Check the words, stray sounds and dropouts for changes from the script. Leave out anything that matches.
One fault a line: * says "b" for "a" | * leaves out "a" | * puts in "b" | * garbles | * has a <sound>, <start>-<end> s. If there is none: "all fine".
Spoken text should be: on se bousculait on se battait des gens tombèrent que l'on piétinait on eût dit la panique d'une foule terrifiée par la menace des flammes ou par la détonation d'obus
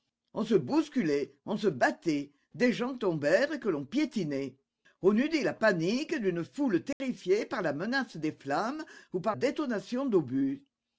* has a dropout, 6.9-7.0 s
* leaves out "la"